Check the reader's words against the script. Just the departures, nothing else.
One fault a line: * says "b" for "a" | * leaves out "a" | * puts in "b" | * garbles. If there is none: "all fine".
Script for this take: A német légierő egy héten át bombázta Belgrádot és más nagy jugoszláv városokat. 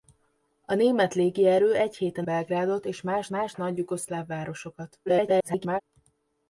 * leaves out "át bombázta"
* puts in "más"
* garbles